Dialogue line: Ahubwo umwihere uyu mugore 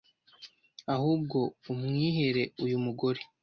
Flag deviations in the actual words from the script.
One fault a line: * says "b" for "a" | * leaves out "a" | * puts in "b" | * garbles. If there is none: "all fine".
all fine